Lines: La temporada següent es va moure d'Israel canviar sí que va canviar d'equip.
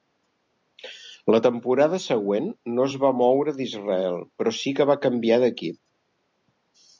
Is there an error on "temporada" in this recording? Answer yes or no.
no